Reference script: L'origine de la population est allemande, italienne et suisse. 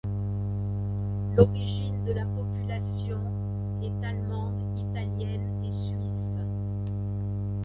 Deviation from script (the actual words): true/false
false